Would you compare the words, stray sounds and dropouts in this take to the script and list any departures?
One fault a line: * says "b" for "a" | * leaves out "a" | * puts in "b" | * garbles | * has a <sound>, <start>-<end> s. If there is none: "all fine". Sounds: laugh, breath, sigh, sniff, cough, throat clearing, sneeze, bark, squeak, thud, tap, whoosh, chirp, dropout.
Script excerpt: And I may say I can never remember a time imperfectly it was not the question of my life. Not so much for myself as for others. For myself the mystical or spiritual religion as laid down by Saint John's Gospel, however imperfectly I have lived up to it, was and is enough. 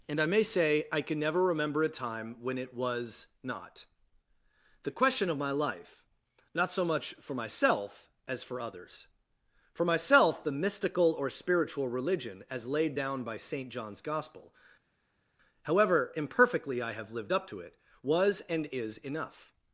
* says "when" for "imperfectly"